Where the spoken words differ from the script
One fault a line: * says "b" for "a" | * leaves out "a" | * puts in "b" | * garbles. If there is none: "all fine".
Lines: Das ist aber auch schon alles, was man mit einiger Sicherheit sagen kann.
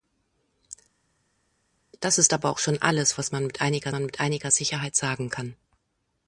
* puts in "man mit einiger"